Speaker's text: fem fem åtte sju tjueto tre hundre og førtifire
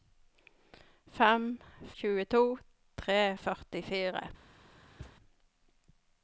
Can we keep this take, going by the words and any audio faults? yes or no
no